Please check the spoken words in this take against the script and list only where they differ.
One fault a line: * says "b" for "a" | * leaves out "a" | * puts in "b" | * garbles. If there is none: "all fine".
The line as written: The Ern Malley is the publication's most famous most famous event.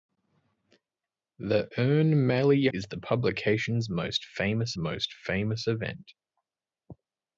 all fine